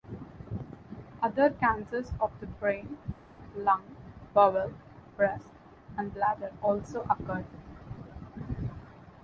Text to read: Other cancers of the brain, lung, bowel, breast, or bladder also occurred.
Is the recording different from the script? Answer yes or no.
yes